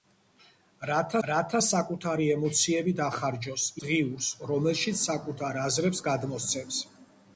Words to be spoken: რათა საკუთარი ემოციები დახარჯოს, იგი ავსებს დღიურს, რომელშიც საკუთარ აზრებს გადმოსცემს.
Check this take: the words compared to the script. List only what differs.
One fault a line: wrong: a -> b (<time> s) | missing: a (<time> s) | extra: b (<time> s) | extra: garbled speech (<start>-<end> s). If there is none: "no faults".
extra: რათა (1.3 s)
missing: იგი ავსებს (3.7 s)